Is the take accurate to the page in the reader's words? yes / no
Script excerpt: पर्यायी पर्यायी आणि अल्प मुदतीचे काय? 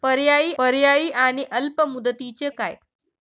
yes